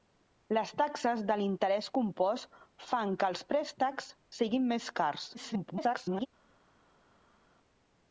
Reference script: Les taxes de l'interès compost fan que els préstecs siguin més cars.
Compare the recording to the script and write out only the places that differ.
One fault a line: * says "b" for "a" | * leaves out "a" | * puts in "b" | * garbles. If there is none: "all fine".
* garbles